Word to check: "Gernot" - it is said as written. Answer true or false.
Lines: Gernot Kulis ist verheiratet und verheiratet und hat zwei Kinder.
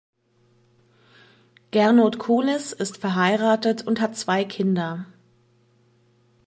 true